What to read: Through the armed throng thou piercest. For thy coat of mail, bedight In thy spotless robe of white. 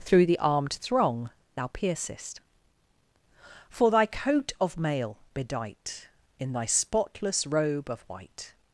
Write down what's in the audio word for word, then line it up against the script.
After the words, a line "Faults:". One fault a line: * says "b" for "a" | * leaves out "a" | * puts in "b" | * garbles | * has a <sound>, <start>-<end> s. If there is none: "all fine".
Through the armed throng thou piercest. For thy coat of mail, bedight In thy spotless robe of white.
Faults:
all fine